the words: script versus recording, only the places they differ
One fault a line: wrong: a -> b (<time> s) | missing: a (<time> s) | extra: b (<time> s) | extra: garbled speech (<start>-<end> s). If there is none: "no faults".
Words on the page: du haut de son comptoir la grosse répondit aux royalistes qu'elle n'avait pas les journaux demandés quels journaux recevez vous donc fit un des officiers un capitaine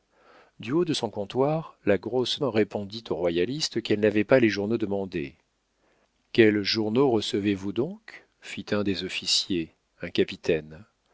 no faults